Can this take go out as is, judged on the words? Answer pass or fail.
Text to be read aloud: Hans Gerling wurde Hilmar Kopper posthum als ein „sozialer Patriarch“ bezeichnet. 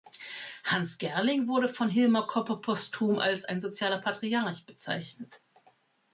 fail